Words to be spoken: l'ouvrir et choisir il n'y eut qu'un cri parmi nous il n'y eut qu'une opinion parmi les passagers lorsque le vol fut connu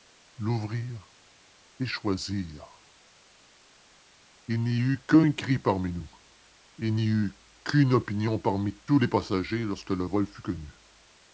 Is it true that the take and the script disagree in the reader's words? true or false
true